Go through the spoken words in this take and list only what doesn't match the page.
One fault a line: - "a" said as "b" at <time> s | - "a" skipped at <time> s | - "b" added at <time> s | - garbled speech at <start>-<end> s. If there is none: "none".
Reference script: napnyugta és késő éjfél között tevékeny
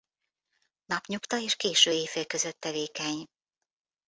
none